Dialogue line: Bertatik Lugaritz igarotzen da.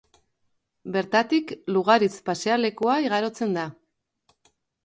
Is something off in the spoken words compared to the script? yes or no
yes